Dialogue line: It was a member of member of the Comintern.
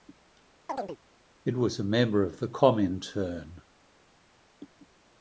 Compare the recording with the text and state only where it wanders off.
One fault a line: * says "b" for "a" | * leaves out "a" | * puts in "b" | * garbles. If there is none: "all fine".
* leaves out "member of"